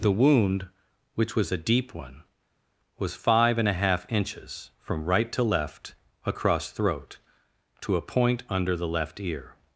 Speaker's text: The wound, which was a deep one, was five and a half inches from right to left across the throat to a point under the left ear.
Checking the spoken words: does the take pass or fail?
fail